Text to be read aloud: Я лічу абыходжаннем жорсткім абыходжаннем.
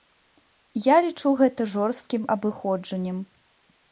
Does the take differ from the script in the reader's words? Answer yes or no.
yes